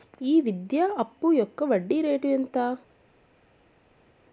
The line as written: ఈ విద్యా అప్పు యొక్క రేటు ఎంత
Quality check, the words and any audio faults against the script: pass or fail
fail